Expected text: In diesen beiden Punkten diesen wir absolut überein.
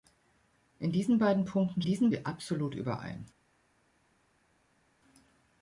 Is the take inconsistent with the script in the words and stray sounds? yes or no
no